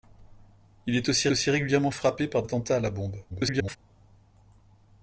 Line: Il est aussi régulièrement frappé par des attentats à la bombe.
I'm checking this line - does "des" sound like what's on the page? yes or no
no